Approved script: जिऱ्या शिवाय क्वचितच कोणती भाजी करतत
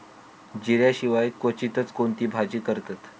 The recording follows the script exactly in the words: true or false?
true